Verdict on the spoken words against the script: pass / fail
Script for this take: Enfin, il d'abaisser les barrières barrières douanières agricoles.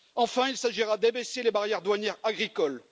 fail